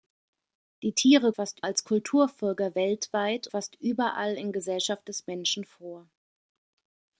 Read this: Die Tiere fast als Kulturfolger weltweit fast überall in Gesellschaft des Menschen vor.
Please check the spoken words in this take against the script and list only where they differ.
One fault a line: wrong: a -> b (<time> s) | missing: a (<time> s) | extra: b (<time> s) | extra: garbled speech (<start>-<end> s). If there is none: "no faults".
no faults